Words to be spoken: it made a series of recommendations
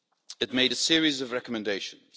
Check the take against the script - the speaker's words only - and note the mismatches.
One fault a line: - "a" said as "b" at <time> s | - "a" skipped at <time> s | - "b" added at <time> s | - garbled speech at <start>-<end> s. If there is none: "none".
none